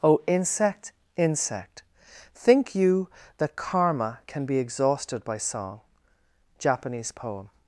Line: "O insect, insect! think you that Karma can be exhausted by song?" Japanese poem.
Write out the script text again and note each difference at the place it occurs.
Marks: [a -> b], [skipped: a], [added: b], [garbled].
"O insect, insect! think you that Karma can be exhausted by song?" Japanese poem.